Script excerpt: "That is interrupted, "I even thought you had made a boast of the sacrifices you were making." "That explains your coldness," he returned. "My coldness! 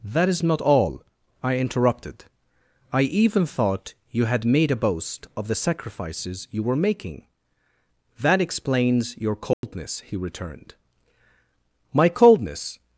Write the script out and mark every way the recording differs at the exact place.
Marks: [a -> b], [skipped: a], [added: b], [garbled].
"That is [added: not all I] interrupted, "I even thought you had made a boast of the sacrifices you were making." "That explains your coldness," he returned. "My coldness!